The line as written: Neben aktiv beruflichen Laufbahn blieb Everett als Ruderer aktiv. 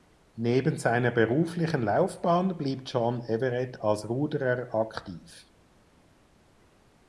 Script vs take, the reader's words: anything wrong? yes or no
yes